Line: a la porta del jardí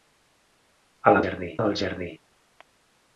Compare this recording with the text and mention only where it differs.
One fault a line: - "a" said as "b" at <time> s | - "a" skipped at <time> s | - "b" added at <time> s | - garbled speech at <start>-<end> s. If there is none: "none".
- "porta" said as "jardí" at 1.2 s